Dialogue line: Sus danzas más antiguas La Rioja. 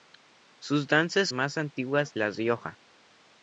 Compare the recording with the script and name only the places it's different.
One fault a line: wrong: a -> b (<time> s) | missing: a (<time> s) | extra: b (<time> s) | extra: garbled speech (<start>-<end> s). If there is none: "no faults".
no faults